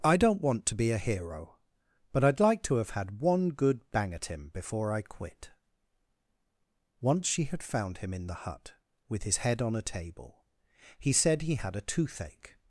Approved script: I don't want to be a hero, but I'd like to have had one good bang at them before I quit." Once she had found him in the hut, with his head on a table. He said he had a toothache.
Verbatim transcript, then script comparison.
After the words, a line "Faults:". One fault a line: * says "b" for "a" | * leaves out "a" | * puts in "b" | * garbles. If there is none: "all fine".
I don't want to be a hero, but I'd like to have had one good bang at him before I quit." Once she had found him in the hut, with his head on a table. He said he had a toothache.
Faults:
* says "him" for "them"